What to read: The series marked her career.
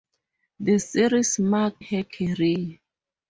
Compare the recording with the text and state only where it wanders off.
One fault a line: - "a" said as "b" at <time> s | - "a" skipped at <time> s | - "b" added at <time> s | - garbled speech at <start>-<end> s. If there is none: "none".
none